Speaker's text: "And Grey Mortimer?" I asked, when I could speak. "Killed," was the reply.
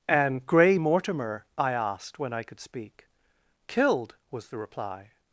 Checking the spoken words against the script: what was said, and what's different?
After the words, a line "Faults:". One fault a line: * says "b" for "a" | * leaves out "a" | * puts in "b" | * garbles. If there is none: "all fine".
"And Grey Mortimer?" I asked, when I could speak. "Killed," was the reply.
Faults:
all fine